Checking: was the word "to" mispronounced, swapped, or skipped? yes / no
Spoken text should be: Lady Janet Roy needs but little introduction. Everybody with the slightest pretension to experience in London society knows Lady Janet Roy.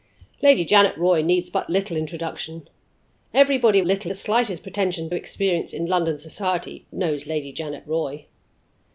yes